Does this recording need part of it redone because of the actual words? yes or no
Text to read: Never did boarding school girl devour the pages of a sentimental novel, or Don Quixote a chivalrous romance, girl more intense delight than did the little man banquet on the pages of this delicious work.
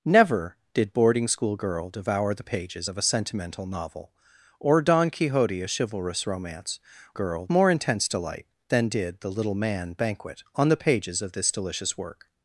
no